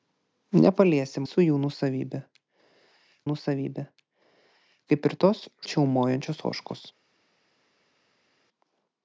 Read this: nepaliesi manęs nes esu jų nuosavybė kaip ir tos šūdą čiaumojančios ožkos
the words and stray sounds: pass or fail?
fail